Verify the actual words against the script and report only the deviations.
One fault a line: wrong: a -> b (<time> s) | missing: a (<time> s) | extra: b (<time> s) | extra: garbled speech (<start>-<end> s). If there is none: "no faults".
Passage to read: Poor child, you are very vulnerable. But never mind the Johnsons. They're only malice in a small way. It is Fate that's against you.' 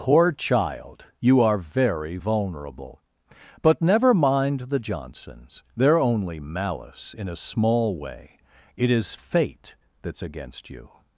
no faults